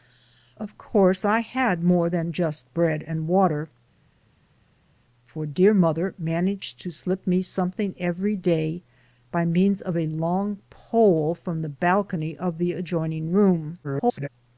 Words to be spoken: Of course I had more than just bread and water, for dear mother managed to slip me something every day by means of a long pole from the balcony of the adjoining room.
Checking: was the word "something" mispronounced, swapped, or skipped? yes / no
no